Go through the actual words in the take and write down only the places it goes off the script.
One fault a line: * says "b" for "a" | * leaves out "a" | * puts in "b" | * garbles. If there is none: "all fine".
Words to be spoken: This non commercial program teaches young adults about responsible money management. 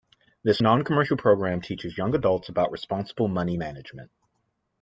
all fine